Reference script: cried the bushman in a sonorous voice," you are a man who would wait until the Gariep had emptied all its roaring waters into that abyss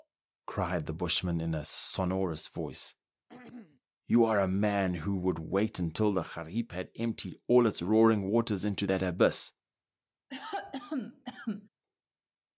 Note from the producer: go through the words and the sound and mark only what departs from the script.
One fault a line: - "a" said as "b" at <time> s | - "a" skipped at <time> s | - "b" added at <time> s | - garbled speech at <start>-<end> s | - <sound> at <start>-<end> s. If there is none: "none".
- throat clearing at 3.3-3.8 s
- cough at 10.3-11.7 s